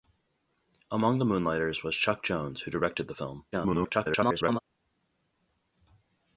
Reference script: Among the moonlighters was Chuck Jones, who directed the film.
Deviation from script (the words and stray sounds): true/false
true